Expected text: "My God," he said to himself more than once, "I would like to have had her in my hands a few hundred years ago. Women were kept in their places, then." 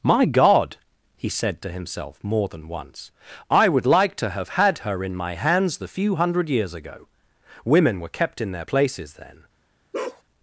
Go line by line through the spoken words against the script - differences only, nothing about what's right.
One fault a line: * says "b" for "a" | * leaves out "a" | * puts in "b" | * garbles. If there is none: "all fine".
* says "the" for "a"